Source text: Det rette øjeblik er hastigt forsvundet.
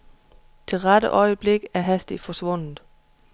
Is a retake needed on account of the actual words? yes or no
no